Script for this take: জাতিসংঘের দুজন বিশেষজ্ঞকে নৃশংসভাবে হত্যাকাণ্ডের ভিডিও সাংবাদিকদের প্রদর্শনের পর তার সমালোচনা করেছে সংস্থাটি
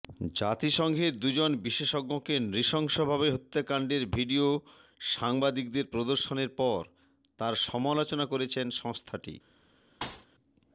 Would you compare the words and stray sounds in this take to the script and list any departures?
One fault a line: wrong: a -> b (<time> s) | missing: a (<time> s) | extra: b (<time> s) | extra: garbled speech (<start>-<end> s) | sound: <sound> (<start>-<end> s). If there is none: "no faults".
sound: thud (10.0-10.3 s)